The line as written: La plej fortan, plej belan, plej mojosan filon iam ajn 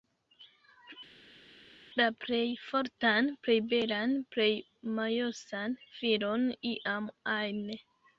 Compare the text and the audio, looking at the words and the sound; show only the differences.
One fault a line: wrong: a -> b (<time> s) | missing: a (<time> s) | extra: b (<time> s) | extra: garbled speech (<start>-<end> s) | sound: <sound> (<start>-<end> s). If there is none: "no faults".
no faults